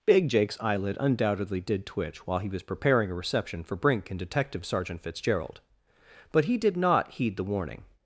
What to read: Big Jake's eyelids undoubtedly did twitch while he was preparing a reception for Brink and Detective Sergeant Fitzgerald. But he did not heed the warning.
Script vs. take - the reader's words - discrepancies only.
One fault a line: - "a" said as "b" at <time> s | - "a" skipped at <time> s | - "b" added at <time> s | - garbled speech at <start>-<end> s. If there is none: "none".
- "eyelids" said as "eyelid" at 0.6 s